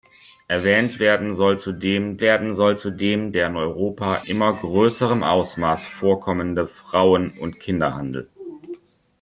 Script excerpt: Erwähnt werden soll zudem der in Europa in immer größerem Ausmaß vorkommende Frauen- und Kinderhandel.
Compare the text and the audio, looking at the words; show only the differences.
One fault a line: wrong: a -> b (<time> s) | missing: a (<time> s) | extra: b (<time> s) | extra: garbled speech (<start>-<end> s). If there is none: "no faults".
extra: werden soll zudem (2.2 s)
missing: in (4.2 s)